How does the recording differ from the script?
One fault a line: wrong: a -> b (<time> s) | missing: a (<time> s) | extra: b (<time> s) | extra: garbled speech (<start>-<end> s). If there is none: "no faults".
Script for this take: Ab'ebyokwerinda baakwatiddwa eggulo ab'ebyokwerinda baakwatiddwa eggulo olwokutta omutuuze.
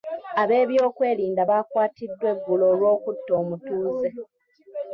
missing: ab'ebyokwerinda baakwatiddwa eggulo (2.6 s)